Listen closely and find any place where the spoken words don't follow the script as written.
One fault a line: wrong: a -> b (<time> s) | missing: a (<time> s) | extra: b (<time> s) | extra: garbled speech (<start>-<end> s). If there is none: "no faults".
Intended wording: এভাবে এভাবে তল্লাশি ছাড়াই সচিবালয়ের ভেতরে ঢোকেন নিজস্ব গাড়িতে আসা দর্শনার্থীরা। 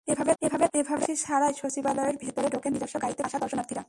no faults